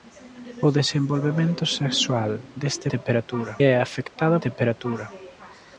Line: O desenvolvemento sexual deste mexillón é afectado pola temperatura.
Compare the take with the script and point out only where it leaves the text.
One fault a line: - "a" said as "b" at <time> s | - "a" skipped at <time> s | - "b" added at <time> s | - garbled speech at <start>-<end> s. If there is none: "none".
- "mexillón" said as "temperatura" at 2.9 s
- "pola" skipped at 4.4 s